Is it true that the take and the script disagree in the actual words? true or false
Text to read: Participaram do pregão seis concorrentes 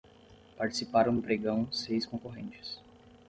false